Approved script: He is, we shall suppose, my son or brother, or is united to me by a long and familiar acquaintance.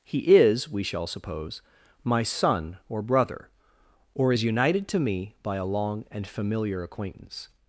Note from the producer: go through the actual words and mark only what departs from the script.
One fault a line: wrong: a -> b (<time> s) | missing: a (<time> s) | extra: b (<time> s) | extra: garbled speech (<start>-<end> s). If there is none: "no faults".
no faults